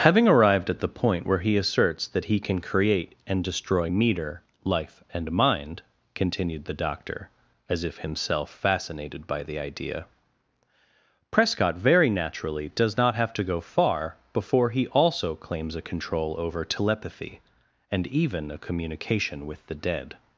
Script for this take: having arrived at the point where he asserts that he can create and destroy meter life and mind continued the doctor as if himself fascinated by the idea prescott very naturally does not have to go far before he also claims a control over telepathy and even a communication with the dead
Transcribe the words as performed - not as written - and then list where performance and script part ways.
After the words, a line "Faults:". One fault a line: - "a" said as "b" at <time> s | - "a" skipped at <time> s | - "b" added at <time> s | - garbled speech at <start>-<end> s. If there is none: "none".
having arrived at the point where he asserts that he can create and destroy meter life and mind continued the doctor as if himself fascinated by the idea prescott very naturally does not have to go far before he also claims a control over telepathy and even a communication with the dead
Faults:
none